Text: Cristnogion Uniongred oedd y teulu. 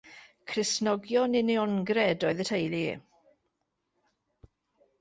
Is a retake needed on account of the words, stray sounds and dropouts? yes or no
no